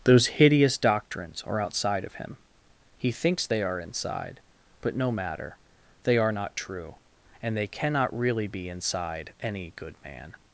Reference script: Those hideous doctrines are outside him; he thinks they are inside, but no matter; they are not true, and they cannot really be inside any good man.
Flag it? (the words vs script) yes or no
yes